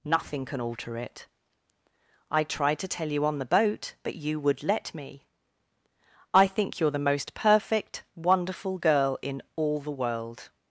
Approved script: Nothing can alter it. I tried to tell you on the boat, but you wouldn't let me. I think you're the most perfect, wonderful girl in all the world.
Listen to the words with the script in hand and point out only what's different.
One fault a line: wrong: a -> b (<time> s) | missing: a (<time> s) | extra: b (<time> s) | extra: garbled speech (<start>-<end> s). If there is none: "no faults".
wrong: wouldn't -> would (4.4 s)